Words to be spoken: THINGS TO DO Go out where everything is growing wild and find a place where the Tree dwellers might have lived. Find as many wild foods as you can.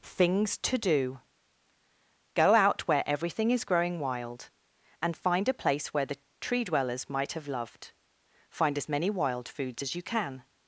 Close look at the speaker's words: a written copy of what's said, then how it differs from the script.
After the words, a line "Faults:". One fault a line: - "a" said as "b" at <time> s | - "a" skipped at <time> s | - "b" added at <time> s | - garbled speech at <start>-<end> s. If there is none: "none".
THINGS TO DO Go out where everything is growing wild and find a place where the Tree dwellers might have loved. Find as many wild foods as you can.
Faults:
- "lived" said as "loved" at 7.5 s